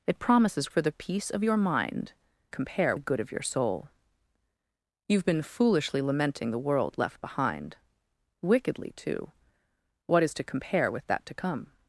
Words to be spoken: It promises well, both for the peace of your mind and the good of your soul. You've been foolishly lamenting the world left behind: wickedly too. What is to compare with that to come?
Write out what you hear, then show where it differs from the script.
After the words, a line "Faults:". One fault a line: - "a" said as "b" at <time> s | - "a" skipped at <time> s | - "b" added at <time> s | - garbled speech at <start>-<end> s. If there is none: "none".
It promises for the peace of your mind compare the good of your soul. You've been foolishly lamenting the world left behind: wickedly too. What is to compare with that to come?
Faults:
- "well both" skipped at 0.7 s
- "and" said as "compare" at 2.5 s